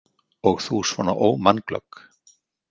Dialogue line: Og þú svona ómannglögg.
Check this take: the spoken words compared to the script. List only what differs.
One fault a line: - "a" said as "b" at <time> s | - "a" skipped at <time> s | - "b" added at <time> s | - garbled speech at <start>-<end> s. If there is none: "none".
none